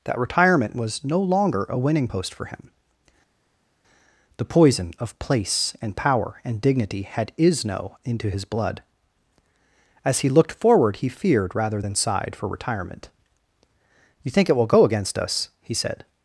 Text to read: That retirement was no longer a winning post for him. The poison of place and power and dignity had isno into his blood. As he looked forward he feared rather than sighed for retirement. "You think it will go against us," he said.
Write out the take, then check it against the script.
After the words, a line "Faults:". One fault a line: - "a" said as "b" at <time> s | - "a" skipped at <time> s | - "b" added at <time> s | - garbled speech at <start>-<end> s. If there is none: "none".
That retirement was no longer a winning post for him. The poison of place and power and dignity had isno into his blood. As he looked forward he feared rather than sighed for retirement. "You think it will go against us," he said.
Faults:
none